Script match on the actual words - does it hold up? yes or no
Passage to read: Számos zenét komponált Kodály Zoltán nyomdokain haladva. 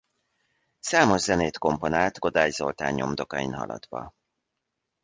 yes